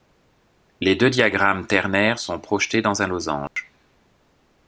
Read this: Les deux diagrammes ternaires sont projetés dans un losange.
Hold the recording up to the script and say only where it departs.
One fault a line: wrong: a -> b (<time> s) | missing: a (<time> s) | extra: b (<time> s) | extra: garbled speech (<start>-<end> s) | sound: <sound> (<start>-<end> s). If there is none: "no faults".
sound: dropout (3.5-3.6 s)